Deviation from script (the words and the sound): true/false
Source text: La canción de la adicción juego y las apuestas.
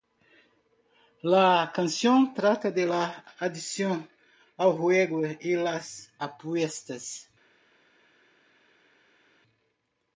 true